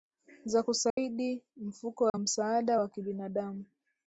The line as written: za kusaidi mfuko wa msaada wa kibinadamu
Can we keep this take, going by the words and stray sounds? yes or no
no